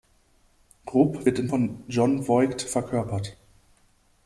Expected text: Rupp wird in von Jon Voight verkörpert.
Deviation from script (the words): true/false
false